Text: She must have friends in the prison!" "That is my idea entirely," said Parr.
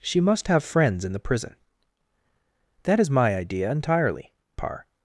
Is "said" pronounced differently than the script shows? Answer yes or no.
yes